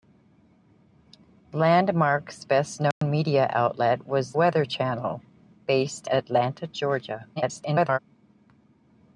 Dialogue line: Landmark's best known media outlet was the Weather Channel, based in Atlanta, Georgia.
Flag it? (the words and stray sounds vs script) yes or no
yes